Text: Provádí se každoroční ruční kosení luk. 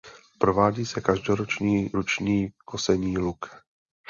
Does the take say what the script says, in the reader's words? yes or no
yes